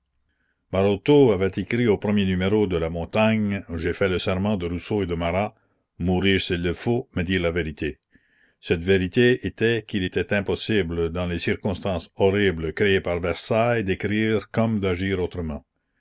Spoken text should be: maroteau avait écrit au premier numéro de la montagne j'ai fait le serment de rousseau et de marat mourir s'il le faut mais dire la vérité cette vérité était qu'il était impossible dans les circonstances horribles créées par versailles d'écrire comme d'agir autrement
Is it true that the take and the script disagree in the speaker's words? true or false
false